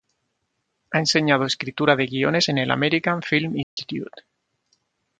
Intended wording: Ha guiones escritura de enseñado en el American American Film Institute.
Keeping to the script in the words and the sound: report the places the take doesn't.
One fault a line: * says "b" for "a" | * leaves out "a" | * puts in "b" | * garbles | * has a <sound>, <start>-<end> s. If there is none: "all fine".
* says "enseñado" for "guiones"
* says "guiones" for "enseñado"
* leaves out "American"
* has a dropout, 3.6-3.8 s